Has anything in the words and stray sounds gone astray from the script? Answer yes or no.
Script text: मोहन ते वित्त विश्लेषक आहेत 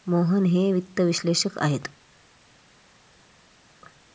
yes